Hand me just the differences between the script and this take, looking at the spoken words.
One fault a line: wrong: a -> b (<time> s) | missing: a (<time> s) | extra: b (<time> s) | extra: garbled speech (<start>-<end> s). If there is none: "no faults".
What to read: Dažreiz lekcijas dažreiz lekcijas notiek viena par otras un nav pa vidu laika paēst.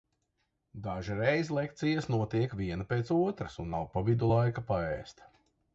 missing: dažreiz lekcijas (2.1 s)
wrong: par -> pēc (2.9 s)